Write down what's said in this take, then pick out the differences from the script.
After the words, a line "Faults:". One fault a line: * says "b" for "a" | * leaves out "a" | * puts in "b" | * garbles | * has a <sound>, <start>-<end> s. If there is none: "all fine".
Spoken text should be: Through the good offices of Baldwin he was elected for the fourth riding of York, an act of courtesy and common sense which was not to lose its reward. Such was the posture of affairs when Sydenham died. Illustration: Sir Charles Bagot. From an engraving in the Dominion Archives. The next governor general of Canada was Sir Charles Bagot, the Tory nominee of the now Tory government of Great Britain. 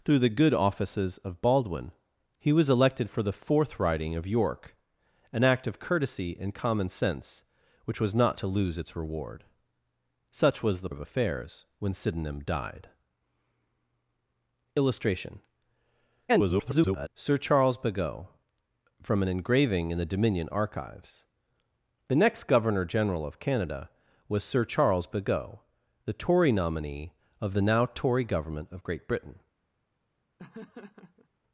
Through the good offices of Baldwin he was elected for the fourth riding of York, an act of courtesy and common sense which was not to lose its reward. Such was the of affairs when Sydenham died. Illustration: [garbled] Sir Charles Bagot. From an engraving in the Dominion Archives. The next governor general of Canada was Sir Charles Bagot, the Tory nominee of the now Tory government of Great Britain.
Faults:
* leaves out "posture"
* garbles
* has a laugh, 30.4-31.3 s